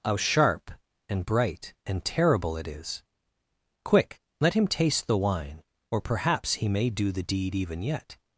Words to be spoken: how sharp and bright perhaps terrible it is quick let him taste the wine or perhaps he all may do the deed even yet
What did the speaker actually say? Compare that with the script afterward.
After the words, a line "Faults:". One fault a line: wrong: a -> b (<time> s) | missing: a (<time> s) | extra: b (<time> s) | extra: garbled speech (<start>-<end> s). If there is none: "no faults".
how sharp and bright and terrible it is quick let him taste the wine or perhaps he may do the deed even yet
Faults:
wrong: perhaps -> and (1.9 s)
missing: all (6.7 s)